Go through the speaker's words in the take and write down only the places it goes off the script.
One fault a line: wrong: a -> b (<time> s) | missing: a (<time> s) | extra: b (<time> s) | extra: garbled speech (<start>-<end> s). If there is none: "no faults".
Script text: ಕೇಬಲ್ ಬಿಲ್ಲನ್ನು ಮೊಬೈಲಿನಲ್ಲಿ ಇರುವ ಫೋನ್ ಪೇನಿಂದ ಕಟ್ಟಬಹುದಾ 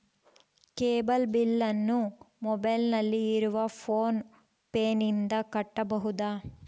no faults